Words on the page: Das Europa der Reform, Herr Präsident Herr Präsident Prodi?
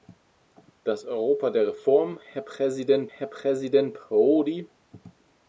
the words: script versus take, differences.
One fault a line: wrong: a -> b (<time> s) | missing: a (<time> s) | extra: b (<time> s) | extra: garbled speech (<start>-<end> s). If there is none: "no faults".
no faults